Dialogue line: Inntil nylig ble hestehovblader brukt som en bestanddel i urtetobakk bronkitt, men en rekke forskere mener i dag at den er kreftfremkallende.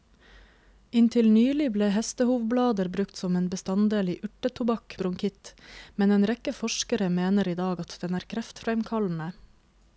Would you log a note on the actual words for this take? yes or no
no